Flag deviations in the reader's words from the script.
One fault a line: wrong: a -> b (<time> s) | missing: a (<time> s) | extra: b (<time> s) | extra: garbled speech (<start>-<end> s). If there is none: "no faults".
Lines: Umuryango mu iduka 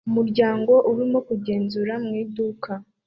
extra: urimo kugenzura (0.9 s)